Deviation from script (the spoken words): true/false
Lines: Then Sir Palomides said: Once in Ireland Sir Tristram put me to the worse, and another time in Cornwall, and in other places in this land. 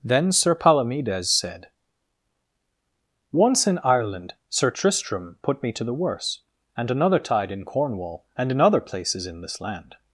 true